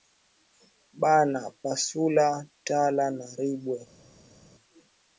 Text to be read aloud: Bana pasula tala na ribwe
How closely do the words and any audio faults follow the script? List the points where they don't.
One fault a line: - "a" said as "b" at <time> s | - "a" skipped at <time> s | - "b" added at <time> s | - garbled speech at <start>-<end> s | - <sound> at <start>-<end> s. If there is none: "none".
none